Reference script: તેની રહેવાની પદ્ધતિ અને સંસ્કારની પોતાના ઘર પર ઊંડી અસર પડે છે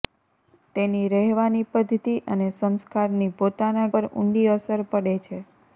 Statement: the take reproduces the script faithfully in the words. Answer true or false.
false